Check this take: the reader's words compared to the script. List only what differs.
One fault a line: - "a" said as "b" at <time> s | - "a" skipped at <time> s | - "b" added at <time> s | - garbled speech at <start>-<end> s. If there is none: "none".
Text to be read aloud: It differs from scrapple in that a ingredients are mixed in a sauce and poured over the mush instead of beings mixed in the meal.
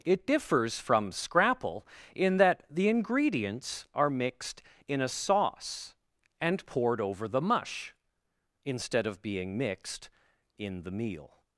- "a" said as "the" at 2.7 s
- "beings" said as "being" at 9.2 s